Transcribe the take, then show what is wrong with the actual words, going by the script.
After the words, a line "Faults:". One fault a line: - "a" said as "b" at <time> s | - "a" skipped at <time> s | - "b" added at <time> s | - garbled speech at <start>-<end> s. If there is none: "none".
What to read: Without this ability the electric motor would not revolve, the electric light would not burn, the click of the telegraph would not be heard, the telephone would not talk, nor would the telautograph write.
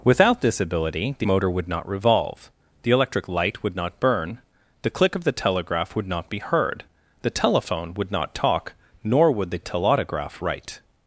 Without this ability the motor would not revolve, the electric light would not burn, the click of the telegraph would not be heard, the telephone would not talk, nor would the telautograph write.
Faults:
- "electric" skipped at 1.3 s